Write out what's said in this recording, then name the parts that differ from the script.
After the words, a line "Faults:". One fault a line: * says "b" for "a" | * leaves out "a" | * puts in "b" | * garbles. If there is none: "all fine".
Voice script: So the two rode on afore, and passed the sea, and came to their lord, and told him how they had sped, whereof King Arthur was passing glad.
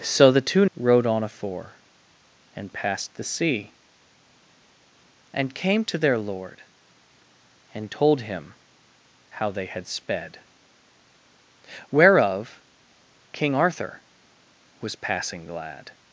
So the two rode on afore, and passed the sea, and came to their lord, and told him how they had sped, whereof King Arthur was passing glad.
Faults:
all fine